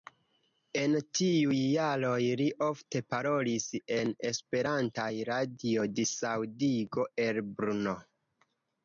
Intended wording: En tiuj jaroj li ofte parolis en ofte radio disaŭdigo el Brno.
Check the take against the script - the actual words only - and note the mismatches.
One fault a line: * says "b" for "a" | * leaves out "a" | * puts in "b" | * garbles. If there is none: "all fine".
* says "esperantaj" for "ofte"